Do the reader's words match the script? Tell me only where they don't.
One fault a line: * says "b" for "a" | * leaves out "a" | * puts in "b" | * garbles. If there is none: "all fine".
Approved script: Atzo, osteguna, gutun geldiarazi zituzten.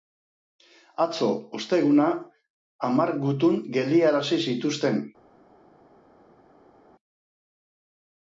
* puts in "hamar"